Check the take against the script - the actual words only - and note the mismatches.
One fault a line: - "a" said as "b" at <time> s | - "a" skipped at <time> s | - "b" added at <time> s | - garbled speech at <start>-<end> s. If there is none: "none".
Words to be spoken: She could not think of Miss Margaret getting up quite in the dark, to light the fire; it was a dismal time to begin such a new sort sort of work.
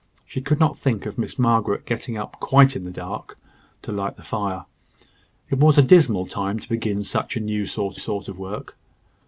none